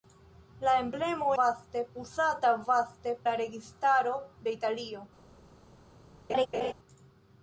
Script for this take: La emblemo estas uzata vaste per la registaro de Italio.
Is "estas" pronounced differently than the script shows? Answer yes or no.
yes